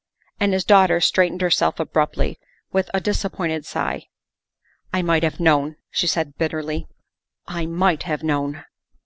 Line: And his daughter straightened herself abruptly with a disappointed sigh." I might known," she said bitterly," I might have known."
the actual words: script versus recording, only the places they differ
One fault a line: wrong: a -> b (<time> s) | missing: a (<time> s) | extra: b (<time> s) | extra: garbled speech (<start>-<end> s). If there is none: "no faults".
extra: have (5.2 s)